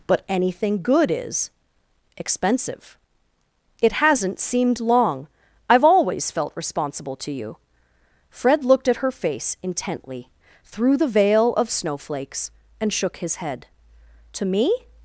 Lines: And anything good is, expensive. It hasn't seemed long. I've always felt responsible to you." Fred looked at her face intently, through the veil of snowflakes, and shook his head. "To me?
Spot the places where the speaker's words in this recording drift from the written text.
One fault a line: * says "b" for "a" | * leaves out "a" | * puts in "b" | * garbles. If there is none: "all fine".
* says "But" for "And"